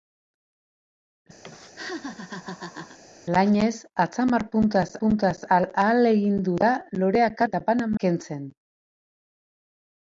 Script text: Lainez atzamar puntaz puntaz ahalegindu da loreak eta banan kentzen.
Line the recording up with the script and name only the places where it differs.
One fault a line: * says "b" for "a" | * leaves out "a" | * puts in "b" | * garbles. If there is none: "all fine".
all fine